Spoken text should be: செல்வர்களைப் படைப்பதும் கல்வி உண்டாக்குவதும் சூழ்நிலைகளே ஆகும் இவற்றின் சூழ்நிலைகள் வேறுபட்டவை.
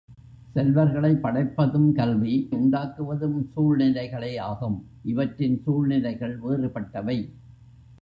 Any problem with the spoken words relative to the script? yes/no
no